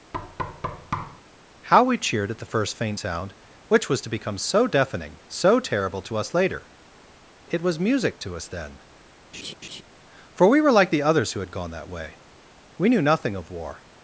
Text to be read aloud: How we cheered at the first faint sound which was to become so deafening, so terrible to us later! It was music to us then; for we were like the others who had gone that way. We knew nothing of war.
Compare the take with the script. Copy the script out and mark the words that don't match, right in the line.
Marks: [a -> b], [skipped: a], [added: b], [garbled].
How we cheered at the first faint sound which was to become so deafening, so terrible to us later! It was music to us then; for we were like the others who had gone that way. We knew nothing of war.